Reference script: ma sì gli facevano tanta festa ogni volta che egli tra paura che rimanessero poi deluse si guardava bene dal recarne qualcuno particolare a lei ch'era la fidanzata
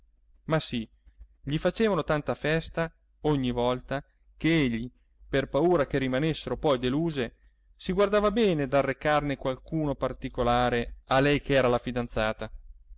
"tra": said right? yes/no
no